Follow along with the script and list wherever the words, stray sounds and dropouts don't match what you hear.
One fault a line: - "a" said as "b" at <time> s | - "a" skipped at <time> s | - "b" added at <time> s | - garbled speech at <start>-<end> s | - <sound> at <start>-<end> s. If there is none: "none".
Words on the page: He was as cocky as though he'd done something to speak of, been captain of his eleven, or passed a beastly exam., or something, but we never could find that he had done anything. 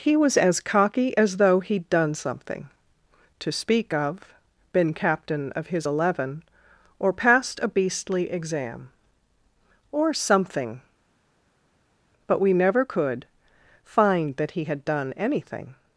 none